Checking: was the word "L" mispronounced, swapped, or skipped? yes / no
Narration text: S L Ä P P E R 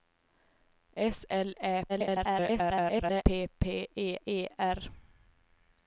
no